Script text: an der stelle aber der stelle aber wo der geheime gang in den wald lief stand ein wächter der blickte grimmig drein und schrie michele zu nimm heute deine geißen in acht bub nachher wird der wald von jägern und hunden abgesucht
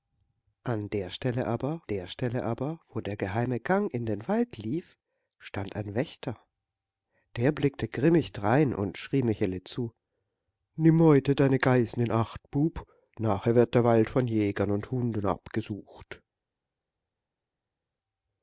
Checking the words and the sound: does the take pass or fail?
pass